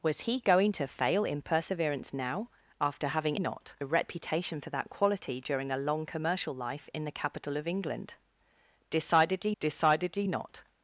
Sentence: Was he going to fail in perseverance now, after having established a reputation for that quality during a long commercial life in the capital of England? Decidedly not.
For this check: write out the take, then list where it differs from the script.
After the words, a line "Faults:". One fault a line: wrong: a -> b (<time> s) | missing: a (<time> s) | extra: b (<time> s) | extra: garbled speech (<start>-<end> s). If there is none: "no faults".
Was he going to fail in perseverance now, after having not a reputation for that quality during a long commercial life in the capital of England? Decidedly decidedly not.
Faults:
wrong: established -> not (3.4 s)
extra: decidedly (9.6 s)